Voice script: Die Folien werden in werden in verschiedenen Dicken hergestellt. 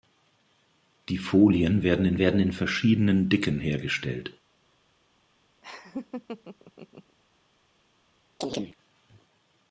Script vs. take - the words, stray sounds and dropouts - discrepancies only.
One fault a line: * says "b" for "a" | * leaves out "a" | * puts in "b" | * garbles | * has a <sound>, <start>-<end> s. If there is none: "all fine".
* has a laugh, 5.6-7.2 s
* has a chirp, 8.4-8.8 s